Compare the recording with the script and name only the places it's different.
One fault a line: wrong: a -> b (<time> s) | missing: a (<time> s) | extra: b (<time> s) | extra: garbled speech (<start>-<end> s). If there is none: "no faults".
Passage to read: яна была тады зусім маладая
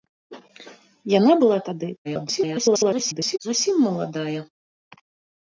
extra: garbled speech (2.0-3.4 s)